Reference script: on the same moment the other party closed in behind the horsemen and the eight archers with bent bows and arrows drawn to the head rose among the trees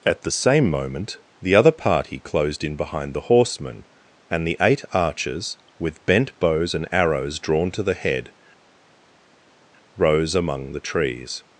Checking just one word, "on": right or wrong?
wrong